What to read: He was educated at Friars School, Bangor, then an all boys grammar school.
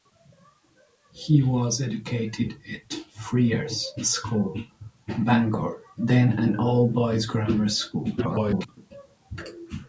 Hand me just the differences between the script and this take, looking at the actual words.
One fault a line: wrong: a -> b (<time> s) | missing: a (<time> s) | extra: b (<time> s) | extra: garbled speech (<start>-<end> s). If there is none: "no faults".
extra: garbled speech (8.2-8.7 s)